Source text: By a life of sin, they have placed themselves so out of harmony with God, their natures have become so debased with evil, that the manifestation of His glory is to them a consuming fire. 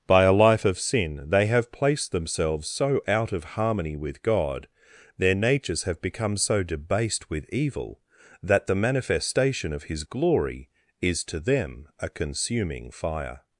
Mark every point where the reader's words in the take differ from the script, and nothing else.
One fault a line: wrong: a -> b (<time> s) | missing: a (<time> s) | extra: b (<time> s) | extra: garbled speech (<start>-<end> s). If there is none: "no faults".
no faults